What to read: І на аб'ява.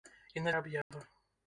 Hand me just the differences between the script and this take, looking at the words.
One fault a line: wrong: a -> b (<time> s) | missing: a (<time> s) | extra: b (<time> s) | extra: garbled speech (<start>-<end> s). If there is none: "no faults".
no faults